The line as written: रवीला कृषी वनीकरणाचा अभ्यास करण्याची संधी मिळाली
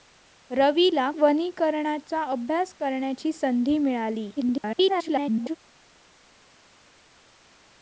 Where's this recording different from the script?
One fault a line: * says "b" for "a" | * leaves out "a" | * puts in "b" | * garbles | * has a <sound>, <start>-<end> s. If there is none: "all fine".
* leaves out "कृषी"
* garbles